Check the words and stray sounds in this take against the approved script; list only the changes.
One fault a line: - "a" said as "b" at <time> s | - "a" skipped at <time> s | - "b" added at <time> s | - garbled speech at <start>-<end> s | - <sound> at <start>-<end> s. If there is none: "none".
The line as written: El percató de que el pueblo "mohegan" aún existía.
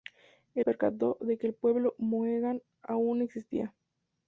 none